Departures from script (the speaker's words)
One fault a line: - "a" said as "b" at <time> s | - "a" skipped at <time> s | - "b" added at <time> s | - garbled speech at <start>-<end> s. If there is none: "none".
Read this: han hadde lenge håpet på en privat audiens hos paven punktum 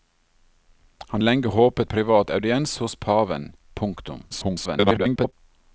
- "hadde" skipped at 1.2 s
- "på en" skipped at 1.9 s
- garbled speech at 4.3-5.3 s